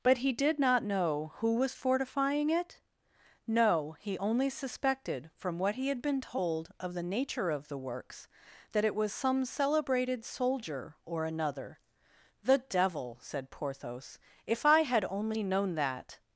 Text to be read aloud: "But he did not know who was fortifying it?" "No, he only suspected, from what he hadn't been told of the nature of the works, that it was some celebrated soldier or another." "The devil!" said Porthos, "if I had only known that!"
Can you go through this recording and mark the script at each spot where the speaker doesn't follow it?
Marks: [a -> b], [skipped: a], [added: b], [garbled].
"But he did not know who was fortifying it?" "No, he only suspected, from what he [hadn't -> had] been told of the nature of the works, that it was some celebrated soldier or another." "The devil!" said Porthos, "if I had only known that!"